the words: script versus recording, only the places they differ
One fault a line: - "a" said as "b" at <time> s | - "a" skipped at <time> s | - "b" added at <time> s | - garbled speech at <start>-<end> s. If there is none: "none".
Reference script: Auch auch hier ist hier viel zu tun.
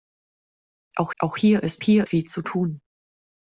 none